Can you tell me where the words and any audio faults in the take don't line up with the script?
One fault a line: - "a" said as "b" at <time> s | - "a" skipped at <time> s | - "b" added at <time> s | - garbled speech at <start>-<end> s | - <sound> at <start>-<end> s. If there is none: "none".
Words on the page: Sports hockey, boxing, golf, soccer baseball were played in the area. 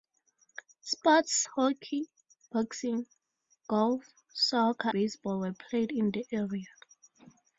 none